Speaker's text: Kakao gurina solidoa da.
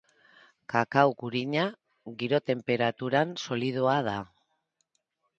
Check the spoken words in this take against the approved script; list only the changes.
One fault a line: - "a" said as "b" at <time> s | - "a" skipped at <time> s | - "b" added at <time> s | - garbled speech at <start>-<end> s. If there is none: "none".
- "giro tenperaturan" added at 2.2 s